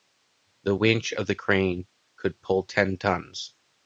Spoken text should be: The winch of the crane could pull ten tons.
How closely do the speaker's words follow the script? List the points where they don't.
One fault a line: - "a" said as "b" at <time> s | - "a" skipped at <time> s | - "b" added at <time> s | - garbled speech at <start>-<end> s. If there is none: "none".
none